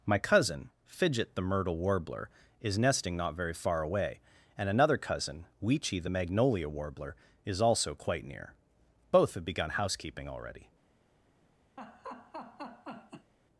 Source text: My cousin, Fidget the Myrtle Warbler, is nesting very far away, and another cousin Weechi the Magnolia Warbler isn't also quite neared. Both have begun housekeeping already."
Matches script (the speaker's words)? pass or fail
fail